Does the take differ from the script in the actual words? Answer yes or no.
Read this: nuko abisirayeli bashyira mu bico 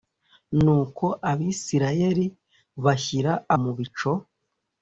no